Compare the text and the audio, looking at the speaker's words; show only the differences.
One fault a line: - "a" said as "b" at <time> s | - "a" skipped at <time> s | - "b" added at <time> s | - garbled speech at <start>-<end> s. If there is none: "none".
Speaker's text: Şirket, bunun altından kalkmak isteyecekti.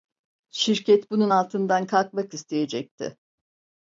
none